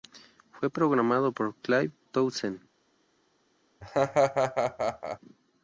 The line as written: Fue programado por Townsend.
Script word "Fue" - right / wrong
right